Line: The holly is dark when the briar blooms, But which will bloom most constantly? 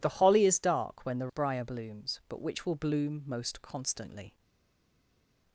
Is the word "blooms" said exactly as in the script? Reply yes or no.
yes